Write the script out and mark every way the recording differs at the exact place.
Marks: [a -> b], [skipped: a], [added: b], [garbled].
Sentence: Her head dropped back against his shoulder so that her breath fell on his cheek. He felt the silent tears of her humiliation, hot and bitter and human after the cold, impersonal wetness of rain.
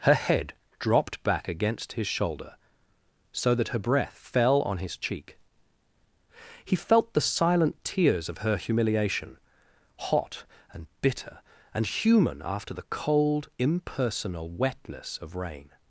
Her head dropped back against his shoulder so that her breath fell on his cheek. He felt the silent tears of her humiliation, hot and bitter and human after the cold, impersonal wetness of rain.